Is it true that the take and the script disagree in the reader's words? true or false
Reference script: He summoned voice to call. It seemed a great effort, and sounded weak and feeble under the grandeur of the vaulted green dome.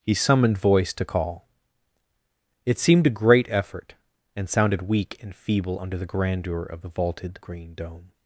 false